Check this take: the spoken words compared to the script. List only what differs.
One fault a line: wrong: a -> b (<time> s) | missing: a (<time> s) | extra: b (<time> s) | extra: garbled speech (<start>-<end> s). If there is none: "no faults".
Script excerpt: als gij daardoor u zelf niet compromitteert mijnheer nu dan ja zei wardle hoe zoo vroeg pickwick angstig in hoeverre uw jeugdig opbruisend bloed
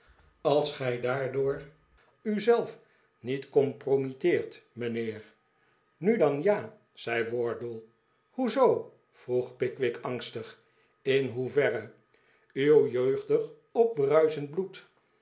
no faults